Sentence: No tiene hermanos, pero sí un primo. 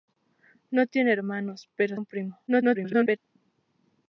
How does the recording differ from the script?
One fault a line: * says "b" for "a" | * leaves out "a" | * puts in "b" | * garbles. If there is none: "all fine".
* leaves out "sí"
* garbles